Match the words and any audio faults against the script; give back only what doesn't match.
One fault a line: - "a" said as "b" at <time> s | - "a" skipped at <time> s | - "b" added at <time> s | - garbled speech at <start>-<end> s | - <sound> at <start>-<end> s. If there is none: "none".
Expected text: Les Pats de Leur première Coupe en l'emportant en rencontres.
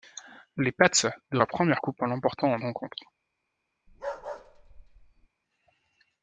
- bark at 3.9-5.3 s